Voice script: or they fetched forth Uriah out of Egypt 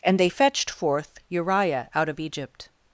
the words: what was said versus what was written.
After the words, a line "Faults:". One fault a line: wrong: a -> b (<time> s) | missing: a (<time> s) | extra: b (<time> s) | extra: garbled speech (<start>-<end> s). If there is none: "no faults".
and they fetched forth Uriah out of Egypt
Faults:
wrong: or -> and (0.0 s)